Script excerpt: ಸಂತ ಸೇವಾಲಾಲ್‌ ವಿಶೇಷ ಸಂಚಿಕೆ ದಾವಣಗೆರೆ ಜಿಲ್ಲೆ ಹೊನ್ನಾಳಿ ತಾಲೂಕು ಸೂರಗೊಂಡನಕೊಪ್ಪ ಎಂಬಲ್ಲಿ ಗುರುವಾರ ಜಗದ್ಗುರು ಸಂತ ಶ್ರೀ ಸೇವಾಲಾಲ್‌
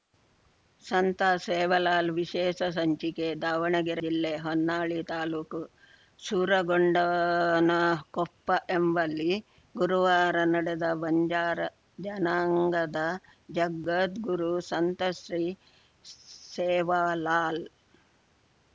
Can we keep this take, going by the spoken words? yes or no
no